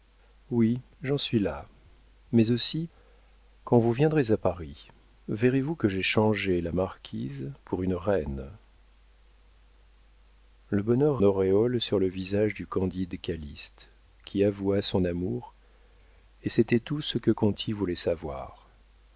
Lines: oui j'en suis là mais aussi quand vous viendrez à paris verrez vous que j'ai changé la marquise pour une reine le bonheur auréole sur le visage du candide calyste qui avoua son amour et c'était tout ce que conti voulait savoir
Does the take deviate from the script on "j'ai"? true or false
false